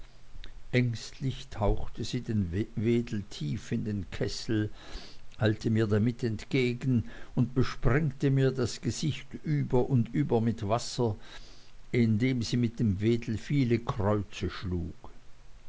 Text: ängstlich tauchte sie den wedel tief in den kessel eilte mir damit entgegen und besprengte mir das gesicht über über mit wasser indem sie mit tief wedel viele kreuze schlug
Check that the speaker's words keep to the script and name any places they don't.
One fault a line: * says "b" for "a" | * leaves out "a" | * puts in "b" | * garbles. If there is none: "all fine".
* puts in "und"
* says "dem" for "tief"